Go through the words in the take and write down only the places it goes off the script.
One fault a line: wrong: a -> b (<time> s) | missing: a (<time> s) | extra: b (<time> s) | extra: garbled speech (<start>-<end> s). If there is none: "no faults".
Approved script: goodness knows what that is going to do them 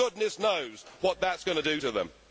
extra: to (1.8 s)